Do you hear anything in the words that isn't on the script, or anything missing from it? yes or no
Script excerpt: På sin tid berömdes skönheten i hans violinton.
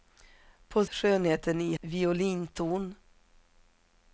yes